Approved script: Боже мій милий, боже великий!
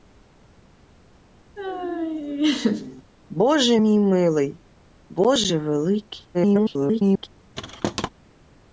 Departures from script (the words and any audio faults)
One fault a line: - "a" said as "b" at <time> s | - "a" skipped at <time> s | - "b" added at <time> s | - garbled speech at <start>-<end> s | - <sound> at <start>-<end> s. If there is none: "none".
- laugh at 1.6-3.0 s
- garbled speech at 6.3-7.3 s
- thud at 7.6-8.1 s